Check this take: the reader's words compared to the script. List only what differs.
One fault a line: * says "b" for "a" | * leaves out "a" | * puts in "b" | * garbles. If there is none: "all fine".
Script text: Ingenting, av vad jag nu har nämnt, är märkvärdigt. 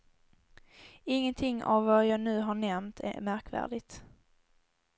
all fine